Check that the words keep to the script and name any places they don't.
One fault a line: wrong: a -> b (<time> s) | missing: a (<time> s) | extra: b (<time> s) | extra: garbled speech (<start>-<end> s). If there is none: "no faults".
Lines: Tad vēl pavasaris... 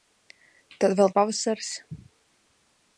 no faults